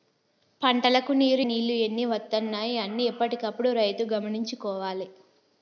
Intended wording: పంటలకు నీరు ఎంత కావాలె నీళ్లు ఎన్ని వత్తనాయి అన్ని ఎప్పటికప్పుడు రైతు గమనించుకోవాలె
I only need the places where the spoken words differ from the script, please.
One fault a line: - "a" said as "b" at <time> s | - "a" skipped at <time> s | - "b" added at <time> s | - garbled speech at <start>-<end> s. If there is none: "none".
- "ఎంత కావాలె" skipped at 1.4 s